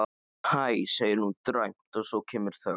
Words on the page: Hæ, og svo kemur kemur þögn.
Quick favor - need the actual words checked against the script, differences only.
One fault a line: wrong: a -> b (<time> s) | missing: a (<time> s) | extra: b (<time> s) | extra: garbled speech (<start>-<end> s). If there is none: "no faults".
extra: segir hún dræmt (0.9 s)
missing: kemur (2.6 s)